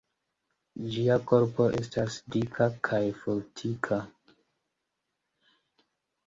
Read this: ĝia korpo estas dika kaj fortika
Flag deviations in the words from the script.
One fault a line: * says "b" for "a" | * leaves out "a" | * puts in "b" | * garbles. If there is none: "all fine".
all fine